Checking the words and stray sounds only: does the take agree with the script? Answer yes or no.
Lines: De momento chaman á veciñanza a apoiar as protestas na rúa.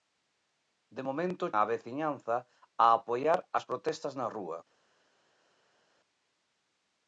no